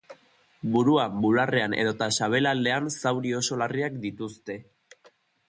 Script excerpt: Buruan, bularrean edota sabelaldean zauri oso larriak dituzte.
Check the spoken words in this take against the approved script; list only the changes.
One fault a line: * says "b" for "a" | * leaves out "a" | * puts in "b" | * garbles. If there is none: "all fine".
all fine